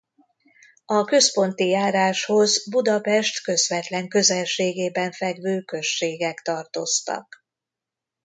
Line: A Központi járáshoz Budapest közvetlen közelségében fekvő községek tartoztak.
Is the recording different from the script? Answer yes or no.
no